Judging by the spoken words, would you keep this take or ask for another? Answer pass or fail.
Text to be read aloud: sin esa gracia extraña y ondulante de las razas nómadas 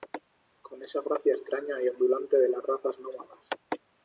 fail